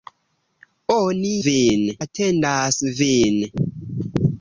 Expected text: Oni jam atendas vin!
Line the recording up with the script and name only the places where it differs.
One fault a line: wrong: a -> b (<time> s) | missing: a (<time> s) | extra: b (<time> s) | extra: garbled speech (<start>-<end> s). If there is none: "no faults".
wrong: jam -> vin (1.5 s)